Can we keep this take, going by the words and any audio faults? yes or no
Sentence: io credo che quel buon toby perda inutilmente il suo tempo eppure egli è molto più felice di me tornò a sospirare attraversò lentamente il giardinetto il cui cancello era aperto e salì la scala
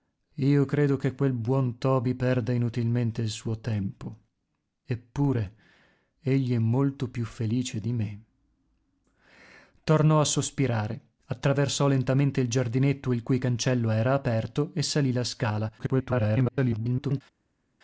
no